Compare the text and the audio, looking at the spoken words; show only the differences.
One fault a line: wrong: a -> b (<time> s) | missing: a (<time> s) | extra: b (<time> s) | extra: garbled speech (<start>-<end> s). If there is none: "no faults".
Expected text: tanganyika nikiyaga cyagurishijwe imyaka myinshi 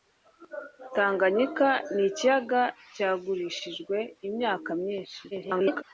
extra: garbled speech (5.3-5.8 s)